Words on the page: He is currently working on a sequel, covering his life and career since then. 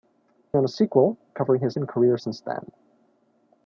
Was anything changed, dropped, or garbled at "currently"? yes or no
yes